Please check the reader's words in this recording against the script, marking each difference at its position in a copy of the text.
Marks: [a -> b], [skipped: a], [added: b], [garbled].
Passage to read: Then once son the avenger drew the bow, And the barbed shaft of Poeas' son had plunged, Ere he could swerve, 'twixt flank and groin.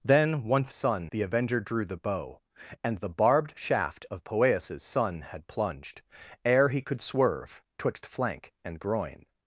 Then once son the avenger drew the bow, And the barbed shaft of Poeas' son had plunged, Ere he could swerve, 'twixt flank and groin.